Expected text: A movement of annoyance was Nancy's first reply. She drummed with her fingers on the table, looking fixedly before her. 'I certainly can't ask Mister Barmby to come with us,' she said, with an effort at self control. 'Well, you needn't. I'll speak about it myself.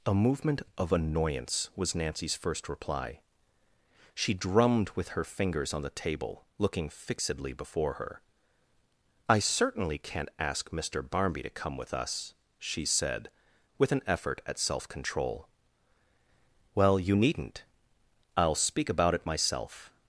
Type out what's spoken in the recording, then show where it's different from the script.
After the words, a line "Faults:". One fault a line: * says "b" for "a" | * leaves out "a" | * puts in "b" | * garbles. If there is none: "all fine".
A movement of annoyance was Nancy's first reply. She drummed with her fingers on the table, looking fixedly before her. 'I certainly can't ask Mister Barmby to come with us,' she said, with an effort at self control. 'Well, you needn't. I'll speak about it myself.
Faults:
all fine